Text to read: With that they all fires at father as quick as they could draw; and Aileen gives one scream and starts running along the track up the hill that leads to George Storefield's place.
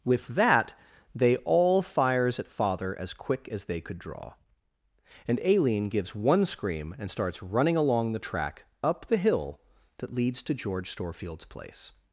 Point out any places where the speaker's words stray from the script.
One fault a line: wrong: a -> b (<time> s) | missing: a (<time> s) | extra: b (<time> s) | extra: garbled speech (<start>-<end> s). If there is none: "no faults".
no faults